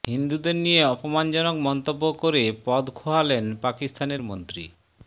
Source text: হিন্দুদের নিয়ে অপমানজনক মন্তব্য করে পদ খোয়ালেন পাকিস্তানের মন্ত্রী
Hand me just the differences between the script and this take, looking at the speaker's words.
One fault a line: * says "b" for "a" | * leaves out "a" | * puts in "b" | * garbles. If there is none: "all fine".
all fine